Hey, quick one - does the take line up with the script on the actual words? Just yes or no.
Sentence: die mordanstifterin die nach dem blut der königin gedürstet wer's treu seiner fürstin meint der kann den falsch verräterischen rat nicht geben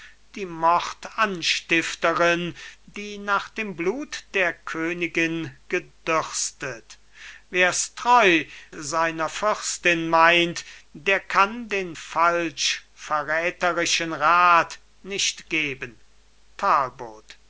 yes